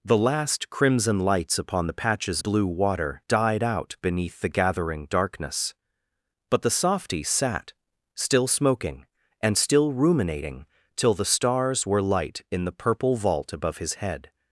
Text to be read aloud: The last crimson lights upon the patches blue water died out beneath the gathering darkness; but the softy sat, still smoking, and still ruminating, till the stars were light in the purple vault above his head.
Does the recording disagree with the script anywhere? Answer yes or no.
no